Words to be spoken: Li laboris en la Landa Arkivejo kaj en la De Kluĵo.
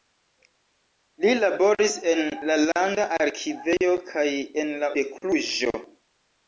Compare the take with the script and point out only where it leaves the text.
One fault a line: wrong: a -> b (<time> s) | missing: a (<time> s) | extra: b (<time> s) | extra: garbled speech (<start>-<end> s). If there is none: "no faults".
no faults